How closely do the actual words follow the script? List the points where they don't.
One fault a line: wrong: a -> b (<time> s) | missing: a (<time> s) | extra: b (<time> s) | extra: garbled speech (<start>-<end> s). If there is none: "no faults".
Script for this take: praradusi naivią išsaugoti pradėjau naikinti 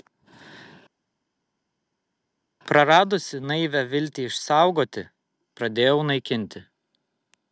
extra: viltį (3.9 s)